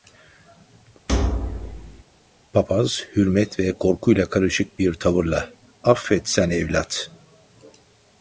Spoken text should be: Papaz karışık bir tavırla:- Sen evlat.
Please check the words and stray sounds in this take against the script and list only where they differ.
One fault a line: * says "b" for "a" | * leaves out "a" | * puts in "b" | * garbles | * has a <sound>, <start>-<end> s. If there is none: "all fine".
* has a thud, 1.1-2.0 s
* puts in "hürmet ve korkuyla"
* puts in "Affet"